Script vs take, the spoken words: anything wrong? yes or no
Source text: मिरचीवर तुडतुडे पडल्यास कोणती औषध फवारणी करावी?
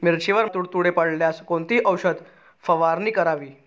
no